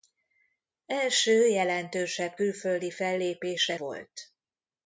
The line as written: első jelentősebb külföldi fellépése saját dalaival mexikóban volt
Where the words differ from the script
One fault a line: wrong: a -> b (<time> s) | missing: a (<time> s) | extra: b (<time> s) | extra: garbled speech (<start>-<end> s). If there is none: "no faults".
missing: saját dalaival mexikóban (3.8 s)